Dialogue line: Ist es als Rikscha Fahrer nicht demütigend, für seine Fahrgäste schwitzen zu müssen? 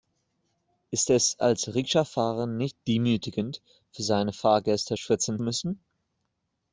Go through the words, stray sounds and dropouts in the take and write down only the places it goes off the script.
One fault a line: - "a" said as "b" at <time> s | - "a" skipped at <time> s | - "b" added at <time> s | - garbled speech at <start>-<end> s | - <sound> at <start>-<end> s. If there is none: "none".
- "zu" skipped at 5.4 s